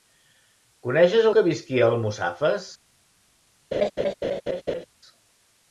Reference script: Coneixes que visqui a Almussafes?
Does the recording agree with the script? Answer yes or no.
yes